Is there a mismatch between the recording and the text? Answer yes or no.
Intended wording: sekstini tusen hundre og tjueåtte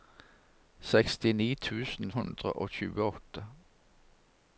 no